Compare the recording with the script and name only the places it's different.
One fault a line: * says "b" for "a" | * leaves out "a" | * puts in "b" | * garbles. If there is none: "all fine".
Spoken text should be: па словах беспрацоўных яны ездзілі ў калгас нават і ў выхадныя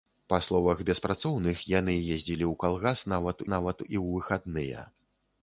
* puts in "нават"